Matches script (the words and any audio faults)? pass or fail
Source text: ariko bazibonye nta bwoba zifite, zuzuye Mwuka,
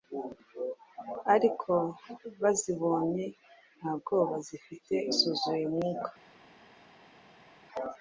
pass